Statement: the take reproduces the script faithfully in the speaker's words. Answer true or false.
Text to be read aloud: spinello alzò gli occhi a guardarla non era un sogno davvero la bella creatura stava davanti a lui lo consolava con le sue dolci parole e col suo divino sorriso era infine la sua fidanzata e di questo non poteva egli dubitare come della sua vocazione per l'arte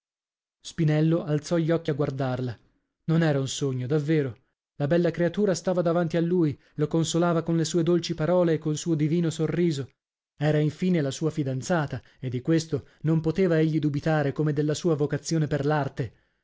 true